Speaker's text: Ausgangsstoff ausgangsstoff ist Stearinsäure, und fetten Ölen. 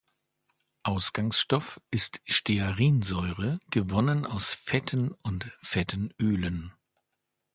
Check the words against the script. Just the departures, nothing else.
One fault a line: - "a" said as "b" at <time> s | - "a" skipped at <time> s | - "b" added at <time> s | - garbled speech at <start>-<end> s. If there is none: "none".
- "ausgangsstoff" skipped at 1.8 s
- "gewonnen aus Fetten" added at 3.7 s